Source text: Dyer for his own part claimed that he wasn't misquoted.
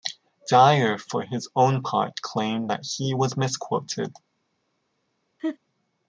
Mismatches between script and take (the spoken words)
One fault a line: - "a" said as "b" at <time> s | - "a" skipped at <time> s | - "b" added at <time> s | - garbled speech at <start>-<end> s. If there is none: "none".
- "wasn't" said as "was" at 3.1 s